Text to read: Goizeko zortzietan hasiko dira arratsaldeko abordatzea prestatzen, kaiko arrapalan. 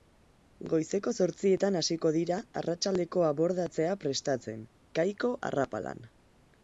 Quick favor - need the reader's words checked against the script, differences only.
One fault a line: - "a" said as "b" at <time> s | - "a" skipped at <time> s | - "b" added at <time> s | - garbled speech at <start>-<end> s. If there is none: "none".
none